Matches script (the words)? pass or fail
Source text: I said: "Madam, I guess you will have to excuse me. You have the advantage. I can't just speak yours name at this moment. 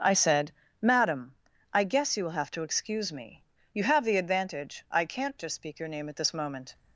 fail